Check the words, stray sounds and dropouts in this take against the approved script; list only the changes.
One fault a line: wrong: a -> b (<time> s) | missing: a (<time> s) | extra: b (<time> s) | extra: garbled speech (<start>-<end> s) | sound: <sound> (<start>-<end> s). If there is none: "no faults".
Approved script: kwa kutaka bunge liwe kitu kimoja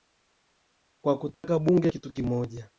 sound: dropout (1.3-1.4 s)
missing: liwe (1.9 s)